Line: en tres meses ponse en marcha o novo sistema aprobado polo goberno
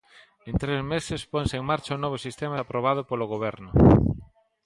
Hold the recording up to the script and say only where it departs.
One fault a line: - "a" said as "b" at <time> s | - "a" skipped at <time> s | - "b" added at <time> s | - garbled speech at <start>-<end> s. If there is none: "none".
none